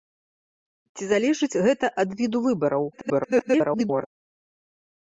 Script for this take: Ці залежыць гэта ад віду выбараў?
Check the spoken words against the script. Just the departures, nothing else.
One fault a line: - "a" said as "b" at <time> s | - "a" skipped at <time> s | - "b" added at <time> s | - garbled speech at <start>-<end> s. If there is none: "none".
- garbled speech at 2.9-4.1 s